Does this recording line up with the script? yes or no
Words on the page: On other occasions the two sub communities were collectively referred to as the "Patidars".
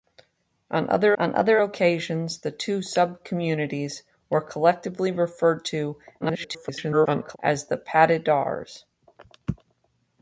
no